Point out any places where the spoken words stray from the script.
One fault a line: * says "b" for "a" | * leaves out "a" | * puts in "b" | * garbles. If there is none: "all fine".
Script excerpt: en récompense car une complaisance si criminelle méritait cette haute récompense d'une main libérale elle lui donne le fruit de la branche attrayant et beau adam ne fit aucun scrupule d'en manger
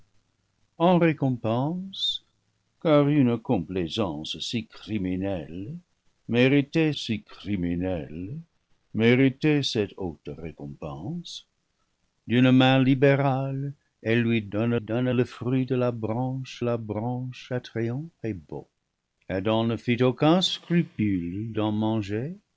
* puts in "si criminelle méritait"
* puts in "donne"
* puts in "la branche"